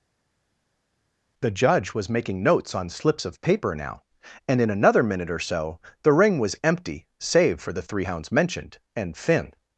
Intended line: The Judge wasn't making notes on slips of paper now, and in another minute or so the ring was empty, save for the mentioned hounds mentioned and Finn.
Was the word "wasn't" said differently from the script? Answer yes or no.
yes